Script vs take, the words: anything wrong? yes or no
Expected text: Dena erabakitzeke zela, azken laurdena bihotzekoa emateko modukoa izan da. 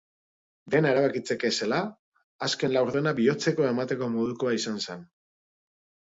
yes